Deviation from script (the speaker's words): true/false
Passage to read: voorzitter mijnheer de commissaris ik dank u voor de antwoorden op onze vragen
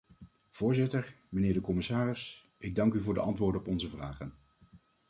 false